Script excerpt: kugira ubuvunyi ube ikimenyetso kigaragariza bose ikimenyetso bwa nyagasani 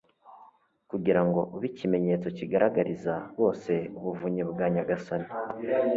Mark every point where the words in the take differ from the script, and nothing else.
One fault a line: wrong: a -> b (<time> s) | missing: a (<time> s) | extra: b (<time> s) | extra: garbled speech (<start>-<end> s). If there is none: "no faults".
wrong: ubuvunyi -> ngo (1.3 s)
wrong: ikimenyetso -> ubuvunyi (4.0 s)